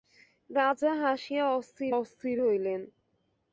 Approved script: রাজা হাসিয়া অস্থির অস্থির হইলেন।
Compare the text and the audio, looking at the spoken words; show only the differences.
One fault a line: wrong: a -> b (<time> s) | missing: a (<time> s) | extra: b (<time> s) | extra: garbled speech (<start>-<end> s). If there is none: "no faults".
no faults